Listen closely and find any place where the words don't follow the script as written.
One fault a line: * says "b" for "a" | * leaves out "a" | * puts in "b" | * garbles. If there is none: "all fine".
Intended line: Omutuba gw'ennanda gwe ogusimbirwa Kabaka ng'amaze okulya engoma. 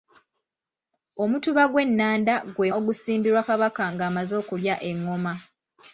all fine